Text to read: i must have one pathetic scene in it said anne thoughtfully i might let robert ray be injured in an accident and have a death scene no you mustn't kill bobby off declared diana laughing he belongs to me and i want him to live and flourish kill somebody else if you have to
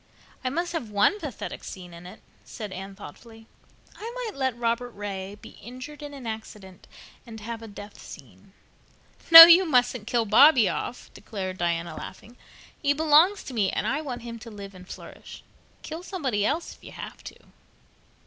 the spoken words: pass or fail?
pass